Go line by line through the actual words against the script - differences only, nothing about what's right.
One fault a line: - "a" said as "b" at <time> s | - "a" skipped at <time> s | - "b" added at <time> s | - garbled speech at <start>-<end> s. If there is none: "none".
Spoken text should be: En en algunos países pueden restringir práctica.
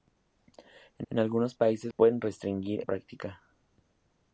none